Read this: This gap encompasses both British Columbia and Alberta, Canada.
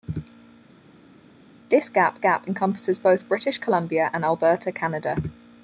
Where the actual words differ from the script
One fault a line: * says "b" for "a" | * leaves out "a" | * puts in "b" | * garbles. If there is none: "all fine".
* puts in "gap"